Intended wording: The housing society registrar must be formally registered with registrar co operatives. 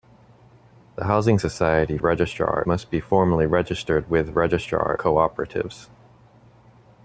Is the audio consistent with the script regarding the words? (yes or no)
yes